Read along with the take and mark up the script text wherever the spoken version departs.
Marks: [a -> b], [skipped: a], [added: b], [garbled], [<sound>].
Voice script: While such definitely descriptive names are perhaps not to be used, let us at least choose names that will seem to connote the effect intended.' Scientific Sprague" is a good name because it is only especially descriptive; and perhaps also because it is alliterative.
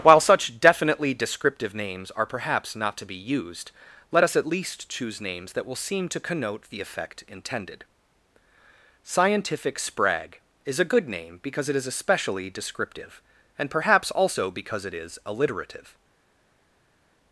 While such definitely descriptive names are perhaps not to be used, let us at least choose names that will seem to connote the effect intended.' Scientific Sprague" is a good name because it is [skipped: only] especially descriptive; and perhaps also because it is alliterative.